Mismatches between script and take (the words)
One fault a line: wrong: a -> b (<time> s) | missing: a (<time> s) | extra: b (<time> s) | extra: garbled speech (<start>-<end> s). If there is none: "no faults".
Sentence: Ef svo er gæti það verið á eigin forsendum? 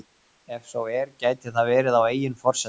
no faults